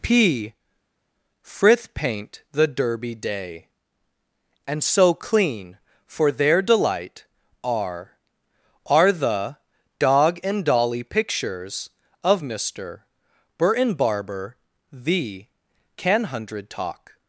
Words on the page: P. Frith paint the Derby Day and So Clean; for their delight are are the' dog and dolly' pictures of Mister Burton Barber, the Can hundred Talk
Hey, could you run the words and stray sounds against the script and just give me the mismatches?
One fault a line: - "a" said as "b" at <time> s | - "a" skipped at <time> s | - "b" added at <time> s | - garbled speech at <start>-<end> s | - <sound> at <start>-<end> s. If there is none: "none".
none